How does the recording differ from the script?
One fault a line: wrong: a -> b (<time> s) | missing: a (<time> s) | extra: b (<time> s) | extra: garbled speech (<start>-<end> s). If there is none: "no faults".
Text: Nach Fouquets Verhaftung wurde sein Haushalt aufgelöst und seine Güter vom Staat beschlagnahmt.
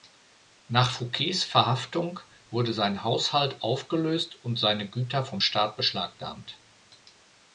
no faults